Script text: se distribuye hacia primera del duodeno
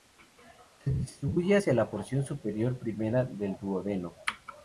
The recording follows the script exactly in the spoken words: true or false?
false